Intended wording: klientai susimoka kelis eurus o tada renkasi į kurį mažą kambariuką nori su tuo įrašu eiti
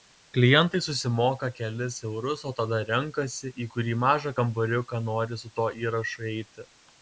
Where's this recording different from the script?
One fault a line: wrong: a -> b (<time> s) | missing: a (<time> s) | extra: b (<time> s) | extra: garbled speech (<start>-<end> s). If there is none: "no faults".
no faults